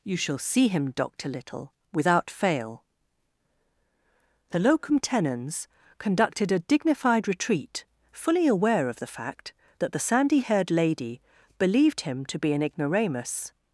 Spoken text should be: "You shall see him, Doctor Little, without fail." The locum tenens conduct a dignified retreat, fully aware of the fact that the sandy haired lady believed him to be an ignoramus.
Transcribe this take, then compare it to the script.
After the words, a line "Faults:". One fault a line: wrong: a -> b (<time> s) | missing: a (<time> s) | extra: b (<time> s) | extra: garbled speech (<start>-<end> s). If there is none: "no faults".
"You shall see him, Doctor Little, without fail." The locum tenens conducted a dignified retreat, fully aware of the fact that the sandy haired lady believed him to be an ignoramus.
Faults:
wrong: conduct -> conducted (6.0 s)